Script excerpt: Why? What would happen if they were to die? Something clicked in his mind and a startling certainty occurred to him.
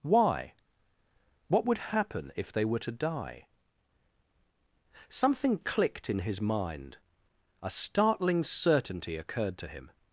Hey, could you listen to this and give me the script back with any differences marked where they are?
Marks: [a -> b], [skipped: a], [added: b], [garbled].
Why? What would happen if they were to die? Something clicked in his mind [skipped: and] a startling certainty occurred to him.